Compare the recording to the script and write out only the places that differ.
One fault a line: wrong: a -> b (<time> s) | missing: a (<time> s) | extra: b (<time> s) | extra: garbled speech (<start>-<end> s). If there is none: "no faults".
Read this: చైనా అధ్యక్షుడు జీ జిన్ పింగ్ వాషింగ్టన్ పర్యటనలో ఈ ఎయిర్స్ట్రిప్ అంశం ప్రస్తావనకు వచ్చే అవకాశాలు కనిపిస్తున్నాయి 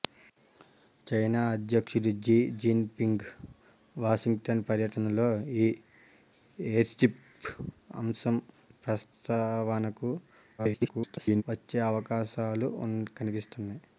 extra: garbled speech (10.6-11.4 s)